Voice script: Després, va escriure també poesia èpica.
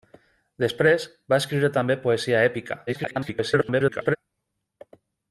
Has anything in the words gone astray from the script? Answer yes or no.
yes